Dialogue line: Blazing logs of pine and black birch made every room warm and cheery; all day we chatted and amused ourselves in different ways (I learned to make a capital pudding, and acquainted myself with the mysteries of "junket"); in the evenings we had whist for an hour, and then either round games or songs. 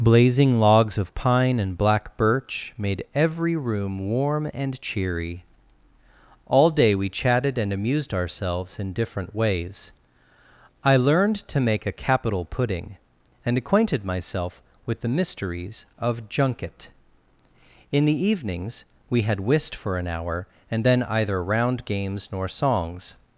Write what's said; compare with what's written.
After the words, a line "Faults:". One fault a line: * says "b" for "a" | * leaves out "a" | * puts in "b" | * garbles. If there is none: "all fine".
Blazing logs of pine and black birch made every room warm and cheery; all day we chatted and amused ourselves in different ways (I learned to make a capital pudding, and acquainted myself with the mysteries of "junket"); in the evenings we had whist for an hour, and then either round games nor songs.
Faults:
* says "nor" for "or"